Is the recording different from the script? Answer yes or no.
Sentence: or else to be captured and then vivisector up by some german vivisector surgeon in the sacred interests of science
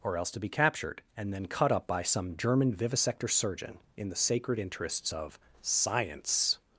yes